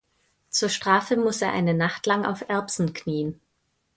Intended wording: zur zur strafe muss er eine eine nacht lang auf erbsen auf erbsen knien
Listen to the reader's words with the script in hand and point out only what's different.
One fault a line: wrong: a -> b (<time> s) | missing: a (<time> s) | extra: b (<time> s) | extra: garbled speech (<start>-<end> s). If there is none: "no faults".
missing: zur (0.7 s)
missing: eine (1.8 s)
missing: auf erbsen (2.9 s)